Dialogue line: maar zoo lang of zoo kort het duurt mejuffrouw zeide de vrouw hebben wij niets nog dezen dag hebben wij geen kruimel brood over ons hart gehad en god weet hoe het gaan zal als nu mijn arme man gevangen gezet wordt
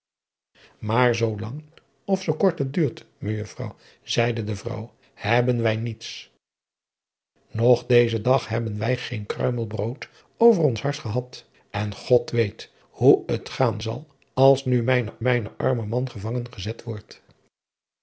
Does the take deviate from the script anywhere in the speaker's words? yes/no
yes